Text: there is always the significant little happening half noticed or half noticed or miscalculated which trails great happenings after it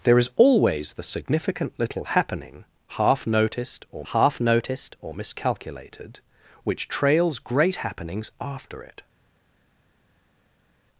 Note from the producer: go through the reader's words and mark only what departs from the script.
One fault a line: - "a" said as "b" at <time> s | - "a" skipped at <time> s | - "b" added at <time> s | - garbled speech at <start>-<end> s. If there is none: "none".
none